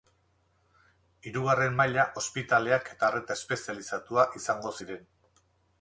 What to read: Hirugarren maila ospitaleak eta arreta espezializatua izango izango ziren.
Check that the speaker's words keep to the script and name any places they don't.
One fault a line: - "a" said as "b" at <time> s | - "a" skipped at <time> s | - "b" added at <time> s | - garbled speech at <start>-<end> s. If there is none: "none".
- "izango" skipped at 4.8 s